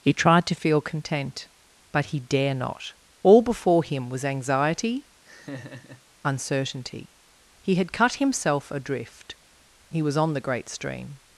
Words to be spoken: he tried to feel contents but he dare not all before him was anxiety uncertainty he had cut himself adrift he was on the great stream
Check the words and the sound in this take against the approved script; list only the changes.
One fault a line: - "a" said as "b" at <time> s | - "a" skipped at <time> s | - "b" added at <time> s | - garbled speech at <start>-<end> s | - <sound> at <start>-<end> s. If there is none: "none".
- "contents" said as "content" at 0.8 s
- laugh at 5.2-6.0 s